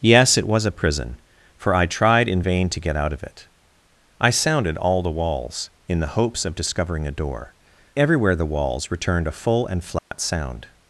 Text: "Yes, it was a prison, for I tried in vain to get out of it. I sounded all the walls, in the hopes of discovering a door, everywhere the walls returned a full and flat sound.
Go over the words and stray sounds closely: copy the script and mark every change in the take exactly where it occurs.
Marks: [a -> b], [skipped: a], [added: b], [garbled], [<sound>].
"Yes, it was a prison, for I tried in vain to get out of it. I sounded all the walls, in the hopes of discovering a door, everywhere the walls returned a full and flat [dropout] sound.